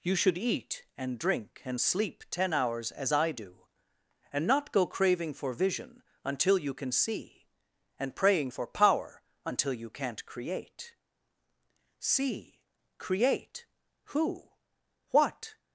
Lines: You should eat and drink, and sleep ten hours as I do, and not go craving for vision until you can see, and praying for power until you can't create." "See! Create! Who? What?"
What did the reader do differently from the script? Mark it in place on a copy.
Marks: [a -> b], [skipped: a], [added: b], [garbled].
You should eat and drink, and sleep ten hours as I do, and not go craving for vision until you can see, and praying for power until you can't create." "See! Create! Who? What?"